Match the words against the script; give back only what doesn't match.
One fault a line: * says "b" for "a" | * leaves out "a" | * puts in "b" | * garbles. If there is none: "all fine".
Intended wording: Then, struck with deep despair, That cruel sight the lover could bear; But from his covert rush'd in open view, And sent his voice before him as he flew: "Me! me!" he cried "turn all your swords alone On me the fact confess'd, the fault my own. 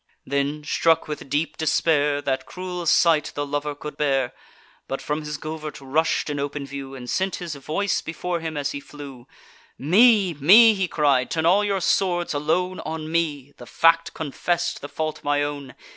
all fine